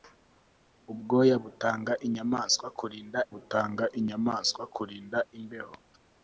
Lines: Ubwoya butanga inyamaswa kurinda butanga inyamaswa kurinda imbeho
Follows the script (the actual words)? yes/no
yes